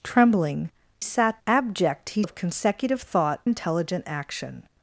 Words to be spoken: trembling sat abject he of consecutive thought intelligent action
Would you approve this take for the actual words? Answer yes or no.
yes